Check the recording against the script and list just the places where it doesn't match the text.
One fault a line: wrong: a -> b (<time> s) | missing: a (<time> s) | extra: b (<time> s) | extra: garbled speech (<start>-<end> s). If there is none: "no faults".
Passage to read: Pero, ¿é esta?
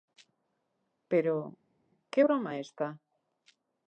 extra: que broma (2.1 s)